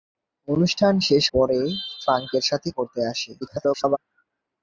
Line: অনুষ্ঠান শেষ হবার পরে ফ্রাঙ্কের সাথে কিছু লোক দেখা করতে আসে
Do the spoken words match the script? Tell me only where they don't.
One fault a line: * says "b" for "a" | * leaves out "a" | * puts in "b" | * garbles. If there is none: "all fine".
* leaves out "হবার"
* leaves out "কিছু লোক দেখা"
* garbles